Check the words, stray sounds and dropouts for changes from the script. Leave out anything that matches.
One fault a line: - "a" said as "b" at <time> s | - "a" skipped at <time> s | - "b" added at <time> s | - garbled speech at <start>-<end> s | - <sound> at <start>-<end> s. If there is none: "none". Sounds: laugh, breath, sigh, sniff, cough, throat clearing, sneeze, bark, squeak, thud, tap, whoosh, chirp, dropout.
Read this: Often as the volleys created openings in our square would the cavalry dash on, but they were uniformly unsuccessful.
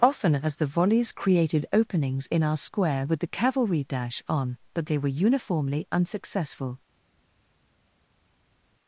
- "would" said as "with" at 3.0 s